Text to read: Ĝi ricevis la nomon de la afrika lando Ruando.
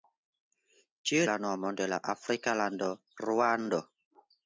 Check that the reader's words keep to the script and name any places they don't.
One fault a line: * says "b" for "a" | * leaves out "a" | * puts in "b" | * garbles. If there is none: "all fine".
* leaves out "ricevis"